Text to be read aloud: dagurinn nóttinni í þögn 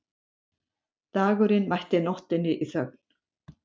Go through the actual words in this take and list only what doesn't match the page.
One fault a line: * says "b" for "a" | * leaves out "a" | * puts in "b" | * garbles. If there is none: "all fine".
* puts in "mætti"